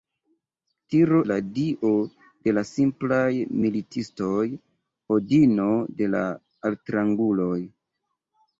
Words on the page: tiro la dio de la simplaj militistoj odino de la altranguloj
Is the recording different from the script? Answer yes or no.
no